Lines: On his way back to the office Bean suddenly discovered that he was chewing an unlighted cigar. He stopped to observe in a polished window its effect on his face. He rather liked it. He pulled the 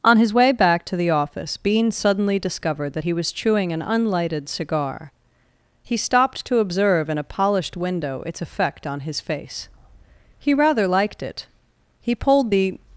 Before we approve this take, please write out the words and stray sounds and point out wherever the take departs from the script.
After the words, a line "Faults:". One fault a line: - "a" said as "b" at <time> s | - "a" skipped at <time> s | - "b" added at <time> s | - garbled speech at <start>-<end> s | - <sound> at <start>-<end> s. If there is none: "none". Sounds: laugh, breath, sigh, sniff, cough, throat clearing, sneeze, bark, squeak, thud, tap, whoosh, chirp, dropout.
On his way back to the office Bean suddenly discovered that he was chewing an unlighted cigar. He stopped to observe in a polished window its effect on his face. He rather liked it. He pulled the
Faults:
none